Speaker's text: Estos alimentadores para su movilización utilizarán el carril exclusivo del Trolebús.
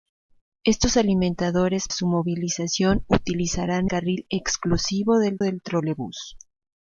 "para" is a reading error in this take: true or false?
true